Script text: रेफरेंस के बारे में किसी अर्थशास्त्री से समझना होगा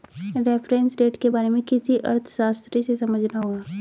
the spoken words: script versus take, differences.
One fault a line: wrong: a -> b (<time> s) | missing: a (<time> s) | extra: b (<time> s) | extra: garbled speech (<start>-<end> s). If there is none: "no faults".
extra: रेट (1.0 s)